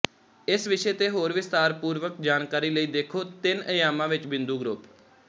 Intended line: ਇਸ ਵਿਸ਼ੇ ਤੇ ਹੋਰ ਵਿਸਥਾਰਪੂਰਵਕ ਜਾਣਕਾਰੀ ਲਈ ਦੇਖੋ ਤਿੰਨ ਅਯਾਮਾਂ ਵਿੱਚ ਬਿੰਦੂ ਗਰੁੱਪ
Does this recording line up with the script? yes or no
yes